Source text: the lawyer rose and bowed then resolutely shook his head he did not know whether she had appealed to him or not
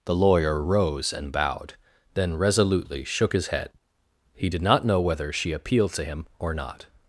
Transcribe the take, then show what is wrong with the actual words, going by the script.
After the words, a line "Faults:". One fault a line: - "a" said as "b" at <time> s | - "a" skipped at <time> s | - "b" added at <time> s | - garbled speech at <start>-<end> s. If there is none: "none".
the lawyer rose and bowed then resolutely shook his head he did not know whether she appealed to him or not
Faults:
- "had" skipped at 5.5 s